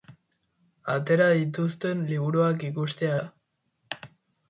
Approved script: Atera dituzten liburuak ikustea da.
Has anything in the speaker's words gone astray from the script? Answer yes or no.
no